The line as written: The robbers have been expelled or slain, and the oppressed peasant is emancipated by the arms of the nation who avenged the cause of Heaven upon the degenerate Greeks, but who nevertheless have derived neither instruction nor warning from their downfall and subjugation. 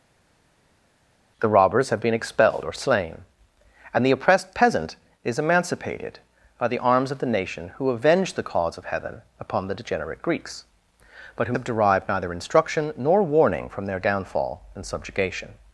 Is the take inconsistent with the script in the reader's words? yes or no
yes